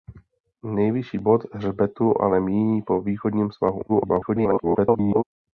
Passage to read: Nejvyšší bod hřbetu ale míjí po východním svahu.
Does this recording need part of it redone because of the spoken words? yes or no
yes